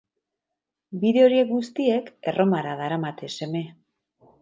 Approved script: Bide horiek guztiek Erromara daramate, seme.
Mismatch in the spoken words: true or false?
false